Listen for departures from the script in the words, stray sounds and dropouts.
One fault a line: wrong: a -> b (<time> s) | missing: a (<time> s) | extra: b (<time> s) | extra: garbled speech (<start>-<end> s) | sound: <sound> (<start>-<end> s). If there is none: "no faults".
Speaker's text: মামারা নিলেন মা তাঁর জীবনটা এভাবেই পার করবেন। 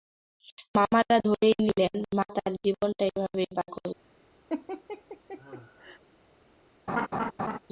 extra: ধরেই (1.2 s)
sound: laugh (4.5-6.0 s)
sound: laugh (6.9-7.6 s)